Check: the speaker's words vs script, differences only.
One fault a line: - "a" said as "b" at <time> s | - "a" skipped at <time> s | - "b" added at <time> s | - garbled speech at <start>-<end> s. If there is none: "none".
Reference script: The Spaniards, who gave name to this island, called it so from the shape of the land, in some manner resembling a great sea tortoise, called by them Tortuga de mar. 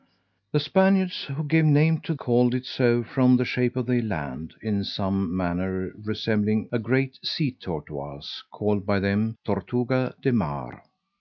- "this island" skipped at 2.1 s